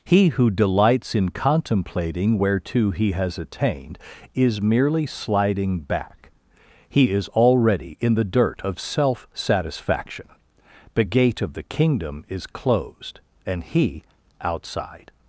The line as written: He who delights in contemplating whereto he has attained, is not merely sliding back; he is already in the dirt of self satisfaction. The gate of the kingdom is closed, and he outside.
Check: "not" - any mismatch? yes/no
yes